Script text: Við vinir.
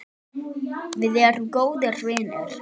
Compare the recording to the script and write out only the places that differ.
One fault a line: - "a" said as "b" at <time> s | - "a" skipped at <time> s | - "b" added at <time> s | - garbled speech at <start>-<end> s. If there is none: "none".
- "erum góðir" added at 1.3 s